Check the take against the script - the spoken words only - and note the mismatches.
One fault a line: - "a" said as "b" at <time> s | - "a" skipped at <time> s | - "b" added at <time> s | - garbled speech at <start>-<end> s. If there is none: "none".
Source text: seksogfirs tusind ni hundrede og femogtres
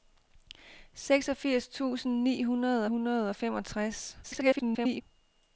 - "hundrede" added at 2.8 s
- garbled speech at 4.2-5.0 s